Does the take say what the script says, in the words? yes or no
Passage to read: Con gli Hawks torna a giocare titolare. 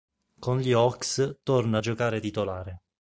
yes